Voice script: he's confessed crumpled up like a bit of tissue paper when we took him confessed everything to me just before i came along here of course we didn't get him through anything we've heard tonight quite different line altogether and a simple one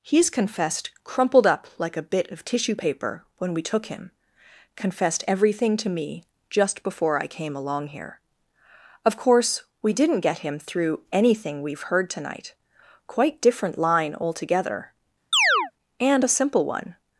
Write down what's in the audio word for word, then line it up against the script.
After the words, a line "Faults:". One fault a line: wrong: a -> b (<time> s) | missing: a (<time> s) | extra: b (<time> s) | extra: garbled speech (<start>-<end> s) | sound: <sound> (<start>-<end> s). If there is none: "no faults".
he's confessed crumpled up like a bit of tissue paper when we took him confessed everything to me just before i came along here of course we didn't get him through anything we've heard tonight quite different line altogether and a simple one
Faults:
sound: chirp (15.3-15.7 s)